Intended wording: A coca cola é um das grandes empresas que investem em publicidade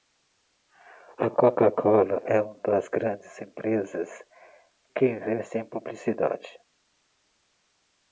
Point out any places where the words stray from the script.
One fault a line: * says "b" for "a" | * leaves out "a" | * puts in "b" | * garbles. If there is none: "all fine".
* says "uma" for "um"